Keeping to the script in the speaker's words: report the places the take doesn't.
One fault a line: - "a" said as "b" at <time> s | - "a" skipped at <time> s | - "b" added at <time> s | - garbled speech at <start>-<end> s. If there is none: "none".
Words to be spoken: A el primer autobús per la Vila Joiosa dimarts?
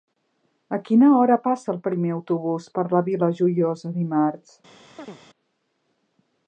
- "quina hora passa" added at 0.9 s